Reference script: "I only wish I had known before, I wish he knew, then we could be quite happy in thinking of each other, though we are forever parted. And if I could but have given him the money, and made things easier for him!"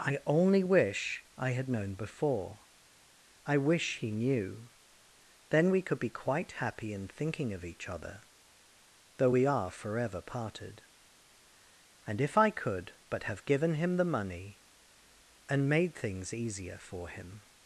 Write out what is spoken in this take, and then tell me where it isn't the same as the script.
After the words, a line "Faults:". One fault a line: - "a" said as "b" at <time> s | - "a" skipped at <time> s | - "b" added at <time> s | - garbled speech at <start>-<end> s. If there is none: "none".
"I only wish I had known before, I wish he knew, then we could be quite happy in thinking of each other, though we are forever parted. And if I could but have given him the money, and made things easier for him!"
Faults:
none